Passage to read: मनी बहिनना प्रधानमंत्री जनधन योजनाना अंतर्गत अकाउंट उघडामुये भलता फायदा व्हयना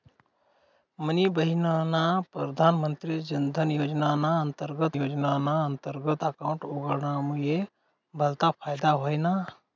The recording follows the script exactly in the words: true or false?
false